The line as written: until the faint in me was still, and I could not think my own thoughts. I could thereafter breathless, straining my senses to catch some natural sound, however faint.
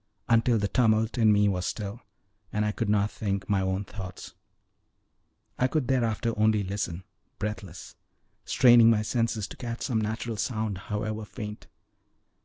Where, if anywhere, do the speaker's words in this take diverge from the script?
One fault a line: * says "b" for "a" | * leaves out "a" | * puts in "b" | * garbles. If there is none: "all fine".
* says "tumult" for "faint"
* puts in "only listen"